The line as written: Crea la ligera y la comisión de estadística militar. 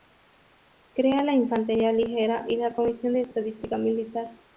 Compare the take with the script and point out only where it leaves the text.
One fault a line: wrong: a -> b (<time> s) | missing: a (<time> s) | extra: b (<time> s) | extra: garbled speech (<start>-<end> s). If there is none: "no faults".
extra: infantería (1.4 s)